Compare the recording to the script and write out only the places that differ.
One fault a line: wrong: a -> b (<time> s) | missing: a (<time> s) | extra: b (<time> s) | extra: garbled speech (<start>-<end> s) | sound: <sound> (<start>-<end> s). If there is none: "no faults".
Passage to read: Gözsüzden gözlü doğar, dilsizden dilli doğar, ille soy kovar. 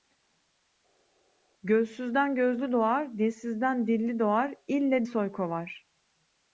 no faults